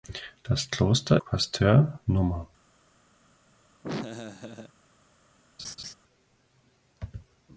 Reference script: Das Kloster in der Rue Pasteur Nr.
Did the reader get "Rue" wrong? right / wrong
wrong